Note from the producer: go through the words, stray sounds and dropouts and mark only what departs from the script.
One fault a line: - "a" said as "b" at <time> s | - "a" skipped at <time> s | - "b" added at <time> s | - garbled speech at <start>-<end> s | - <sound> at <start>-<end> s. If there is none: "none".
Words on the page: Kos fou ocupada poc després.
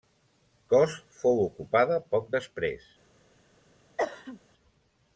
- cough at 4.0-4.4 s